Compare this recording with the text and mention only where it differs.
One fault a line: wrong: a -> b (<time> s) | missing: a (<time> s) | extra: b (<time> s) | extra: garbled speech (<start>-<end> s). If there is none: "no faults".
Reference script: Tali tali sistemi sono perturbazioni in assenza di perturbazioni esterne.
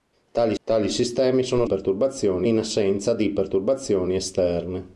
no faults